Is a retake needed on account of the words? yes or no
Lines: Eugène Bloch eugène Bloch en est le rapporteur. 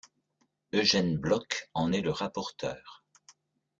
yes